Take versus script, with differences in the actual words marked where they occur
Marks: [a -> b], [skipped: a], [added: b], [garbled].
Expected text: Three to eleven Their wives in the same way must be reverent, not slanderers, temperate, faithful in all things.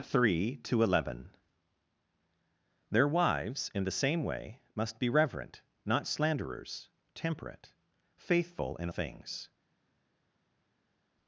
Three to eleven Their wives in the same way must be reverent, not slanderers, temperate, faithful in [skipped: all] things.